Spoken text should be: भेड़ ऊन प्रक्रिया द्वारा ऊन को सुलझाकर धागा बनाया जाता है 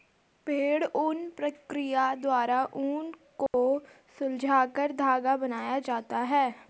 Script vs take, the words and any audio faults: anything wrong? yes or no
yes